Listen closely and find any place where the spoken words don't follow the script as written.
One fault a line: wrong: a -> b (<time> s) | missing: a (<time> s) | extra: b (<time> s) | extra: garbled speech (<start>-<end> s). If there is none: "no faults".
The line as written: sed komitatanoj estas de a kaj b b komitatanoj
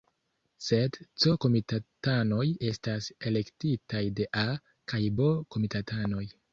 extra: c (1.2 s)
extra: elektitaj (3.3 s)
missing: b (5.4 s)